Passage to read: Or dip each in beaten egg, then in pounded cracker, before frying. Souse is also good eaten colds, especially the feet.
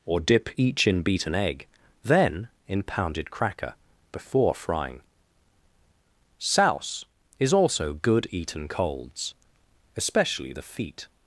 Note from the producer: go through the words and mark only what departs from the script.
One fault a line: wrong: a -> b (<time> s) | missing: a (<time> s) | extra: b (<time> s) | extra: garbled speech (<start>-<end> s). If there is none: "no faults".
no faults